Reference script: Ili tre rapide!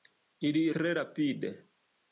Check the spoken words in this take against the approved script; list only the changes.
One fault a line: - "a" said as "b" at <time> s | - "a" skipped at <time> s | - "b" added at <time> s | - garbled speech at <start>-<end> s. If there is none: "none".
none